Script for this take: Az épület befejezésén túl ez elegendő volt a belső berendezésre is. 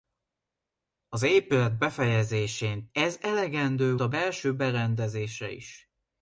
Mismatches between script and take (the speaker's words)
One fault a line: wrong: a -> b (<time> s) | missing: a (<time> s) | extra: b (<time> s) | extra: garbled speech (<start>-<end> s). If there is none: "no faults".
missing: túl (2.9 s)
missing: volt (4.0 s)